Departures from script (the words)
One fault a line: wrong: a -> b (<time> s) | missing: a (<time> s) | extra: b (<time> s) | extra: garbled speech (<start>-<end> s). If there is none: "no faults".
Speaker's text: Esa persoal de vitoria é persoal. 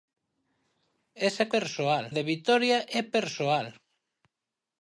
no faults